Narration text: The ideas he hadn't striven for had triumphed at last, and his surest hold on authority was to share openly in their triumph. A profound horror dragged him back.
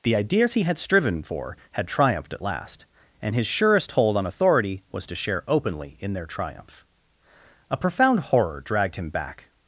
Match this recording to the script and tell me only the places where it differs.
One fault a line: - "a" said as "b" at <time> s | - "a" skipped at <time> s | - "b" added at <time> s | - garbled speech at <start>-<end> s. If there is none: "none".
- "hadn't" said as "had" at 0.6 s